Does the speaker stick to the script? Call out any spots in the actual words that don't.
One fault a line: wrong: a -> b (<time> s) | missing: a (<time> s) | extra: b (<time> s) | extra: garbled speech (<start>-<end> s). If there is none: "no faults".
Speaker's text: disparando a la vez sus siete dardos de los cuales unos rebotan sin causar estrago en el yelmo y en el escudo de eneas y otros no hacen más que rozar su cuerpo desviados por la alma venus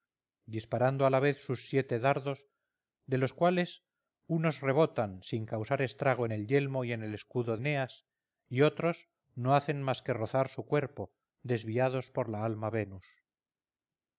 missing: de (7.6 s)